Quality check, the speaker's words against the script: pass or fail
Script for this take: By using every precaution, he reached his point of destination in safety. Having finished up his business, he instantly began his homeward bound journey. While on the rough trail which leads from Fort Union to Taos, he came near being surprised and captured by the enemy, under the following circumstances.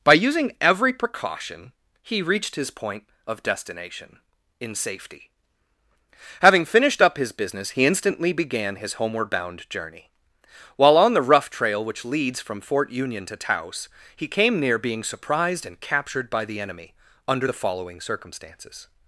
pass